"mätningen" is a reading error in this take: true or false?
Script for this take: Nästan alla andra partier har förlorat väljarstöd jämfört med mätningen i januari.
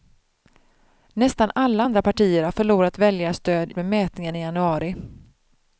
false